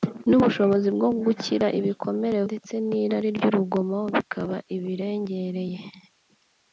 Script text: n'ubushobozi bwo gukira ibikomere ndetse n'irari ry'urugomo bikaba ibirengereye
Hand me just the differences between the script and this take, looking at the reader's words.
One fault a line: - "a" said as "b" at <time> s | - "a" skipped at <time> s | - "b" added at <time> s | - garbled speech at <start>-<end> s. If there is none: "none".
none